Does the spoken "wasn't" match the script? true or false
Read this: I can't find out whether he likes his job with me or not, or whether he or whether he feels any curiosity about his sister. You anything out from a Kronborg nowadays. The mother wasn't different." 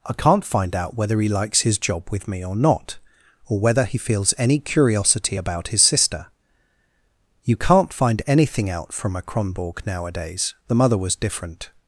false